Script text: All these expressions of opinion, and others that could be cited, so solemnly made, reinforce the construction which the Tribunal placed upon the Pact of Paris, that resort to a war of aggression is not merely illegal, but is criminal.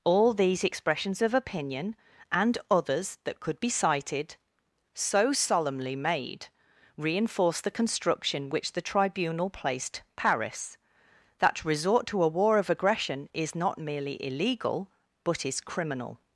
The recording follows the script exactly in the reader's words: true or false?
false